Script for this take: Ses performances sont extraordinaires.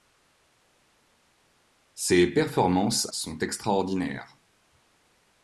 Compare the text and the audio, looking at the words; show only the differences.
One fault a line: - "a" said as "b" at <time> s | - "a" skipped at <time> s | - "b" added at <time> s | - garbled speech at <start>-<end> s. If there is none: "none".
none